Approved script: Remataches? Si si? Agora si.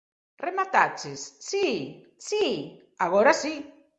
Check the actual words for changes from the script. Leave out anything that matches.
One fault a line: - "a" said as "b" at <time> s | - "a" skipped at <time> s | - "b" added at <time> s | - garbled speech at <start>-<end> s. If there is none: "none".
none